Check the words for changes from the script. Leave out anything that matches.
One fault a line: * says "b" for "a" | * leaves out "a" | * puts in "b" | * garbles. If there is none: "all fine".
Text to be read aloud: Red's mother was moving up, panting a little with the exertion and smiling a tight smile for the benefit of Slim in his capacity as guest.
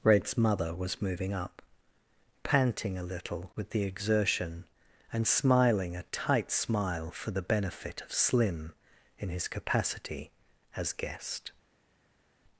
all fine